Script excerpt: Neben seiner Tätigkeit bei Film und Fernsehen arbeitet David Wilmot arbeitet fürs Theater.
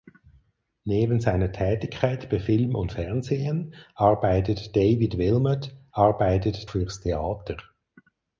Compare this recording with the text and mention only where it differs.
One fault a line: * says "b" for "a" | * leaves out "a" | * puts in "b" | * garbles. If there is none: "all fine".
all fine